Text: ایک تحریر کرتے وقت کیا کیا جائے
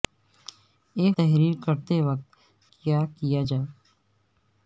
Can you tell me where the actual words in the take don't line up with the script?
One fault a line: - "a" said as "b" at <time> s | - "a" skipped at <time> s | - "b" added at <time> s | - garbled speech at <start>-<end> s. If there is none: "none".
none